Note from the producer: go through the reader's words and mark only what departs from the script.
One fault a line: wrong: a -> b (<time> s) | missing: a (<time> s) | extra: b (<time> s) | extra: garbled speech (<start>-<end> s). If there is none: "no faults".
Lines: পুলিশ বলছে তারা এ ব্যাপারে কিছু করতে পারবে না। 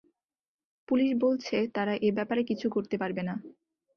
no faults